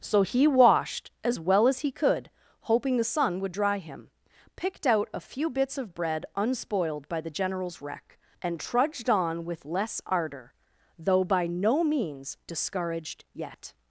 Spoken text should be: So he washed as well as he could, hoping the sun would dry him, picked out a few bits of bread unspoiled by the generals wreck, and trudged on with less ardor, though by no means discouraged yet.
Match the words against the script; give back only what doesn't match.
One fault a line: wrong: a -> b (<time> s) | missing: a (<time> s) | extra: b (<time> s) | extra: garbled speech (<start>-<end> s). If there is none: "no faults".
no faults